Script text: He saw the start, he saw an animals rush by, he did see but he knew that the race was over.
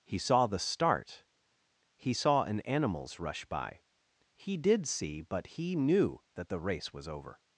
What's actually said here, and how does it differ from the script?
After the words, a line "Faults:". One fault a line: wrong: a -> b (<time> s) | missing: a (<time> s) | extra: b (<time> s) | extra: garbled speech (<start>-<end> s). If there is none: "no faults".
He saw the start, he saw an animals rush by, he did see but he knew that the race was over.
Faults:
no faults